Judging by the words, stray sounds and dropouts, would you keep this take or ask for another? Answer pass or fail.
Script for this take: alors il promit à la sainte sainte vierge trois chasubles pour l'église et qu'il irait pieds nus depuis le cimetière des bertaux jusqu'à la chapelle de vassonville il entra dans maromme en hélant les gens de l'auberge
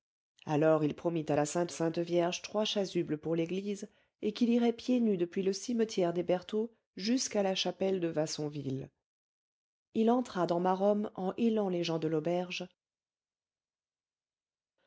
pass